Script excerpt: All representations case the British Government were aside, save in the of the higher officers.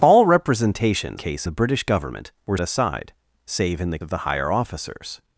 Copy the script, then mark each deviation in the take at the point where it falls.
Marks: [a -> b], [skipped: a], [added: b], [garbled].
All representations case the British Government were aside, save in the of the higher officers.